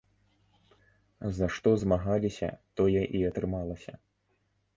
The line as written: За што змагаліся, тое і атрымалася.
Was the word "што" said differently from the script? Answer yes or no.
no